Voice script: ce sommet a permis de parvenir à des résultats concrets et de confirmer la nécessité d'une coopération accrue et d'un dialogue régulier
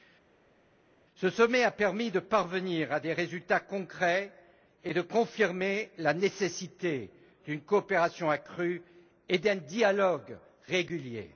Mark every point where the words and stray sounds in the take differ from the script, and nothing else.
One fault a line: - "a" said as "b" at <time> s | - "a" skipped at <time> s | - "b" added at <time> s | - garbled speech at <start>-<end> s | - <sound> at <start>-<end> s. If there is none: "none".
none